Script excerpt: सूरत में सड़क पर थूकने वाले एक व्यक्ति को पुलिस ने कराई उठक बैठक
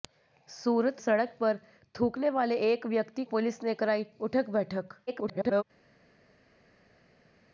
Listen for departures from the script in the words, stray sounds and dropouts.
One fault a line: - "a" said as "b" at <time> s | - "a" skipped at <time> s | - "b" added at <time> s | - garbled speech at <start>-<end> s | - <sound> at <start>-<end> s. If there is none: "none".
- "में" skipped at 1.0 s
- "को" skipped at 3.2 s
- garbled speech at 5.1-5.6 s